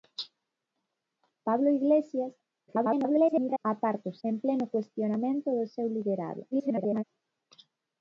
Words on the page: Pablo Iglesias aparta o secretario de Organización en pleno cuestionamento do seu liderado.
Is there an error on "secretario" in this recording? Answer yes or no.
yes